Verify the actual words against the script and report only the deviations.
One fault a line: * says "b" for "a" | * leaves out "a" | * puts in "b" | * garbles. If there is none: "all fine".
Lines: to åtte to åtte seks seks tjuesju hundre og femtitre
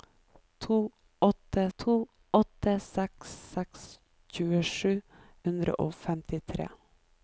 all fine